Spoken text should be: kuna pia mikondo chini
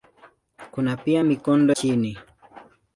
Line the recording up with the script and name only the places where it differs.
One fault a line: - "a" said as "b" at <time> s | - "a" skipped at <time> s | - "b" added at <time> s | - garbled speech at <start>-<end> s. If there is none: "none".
none